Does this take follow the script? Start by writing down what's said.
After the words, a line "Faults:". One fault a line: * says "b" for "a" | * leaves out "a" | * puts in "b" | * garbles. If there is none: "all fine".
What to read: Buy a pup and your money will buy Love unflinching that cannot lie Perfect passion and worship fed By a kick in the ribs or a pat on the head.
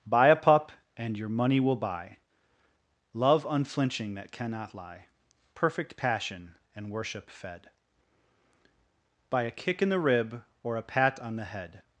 Buy a pup and your money will buy Love unflinching that cannot lie Perfect passion and worship fed By a kick in the rib or a pat on the head.
Faults:
* says "rib" for "ribs"